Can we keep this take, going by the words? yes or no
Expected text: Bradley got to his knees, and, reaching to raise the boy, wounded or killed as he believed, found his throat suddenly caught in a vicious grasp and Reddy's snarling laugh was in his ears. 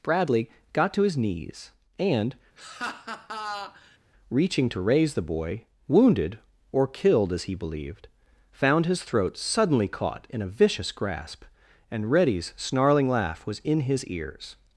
yes